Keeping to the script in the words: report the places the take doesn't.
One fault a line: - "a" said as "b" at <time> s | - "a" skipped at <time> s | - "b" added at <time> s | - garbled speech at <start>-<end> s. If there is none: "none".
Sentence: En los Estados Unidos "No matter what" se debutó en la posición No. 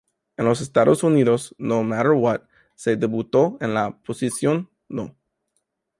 none